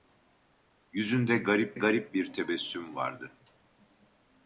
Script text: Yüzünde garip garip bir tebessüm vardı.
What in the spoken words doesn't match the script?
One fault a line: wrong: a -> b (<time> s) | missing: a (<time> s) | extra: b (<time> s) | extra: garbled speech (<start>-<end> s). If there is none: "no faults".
no faults